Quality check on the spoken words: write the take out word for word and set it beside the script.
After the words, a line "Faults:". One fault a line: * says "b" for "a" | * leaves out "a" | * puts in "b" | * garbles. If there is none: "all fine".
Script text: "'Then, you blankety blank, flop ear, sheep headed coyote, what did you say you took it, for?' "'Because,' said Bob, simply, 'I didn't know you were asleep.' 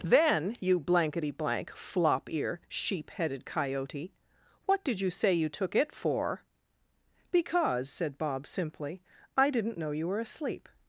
"'Then, you blankety blank, flop ear, sheep headed coyote, what did you say you took it, for?' "'Because,' said Bob, simply, 'I didn't know you were asleep.'
Faults:
all fine